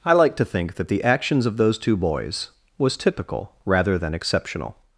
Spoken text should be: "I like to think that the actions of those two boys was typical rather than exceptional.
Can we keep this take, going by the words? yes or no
yes